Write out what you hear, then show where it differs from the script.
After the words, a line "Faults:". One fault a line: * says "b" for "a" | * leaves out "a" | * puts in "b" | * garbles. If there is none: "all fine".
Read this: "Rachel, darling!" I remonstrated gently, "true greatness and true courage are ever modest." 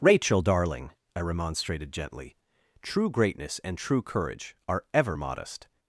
"Rachel, darling!" I remonstrated gently, "true greatness and true courage are ever modest."
Faults:
all fine